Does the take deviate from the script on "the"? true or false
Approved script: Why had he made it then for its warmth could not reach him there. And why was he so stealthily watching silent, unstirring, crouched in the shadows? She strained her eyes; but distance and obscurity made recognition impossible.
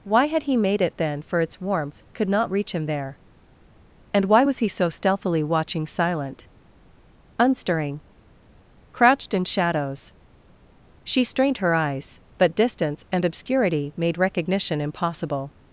true